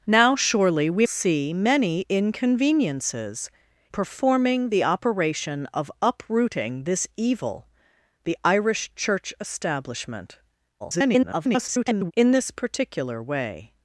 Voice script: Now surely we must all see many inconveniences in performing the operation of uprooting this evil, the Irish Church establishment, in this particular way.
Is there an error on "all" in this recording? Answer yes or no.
yes